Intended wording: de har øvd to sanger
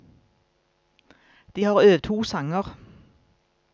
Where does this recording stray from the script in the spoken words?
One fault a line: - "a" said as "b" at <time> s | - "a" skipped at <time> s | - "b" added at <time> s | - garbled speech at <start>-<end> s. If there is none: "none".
none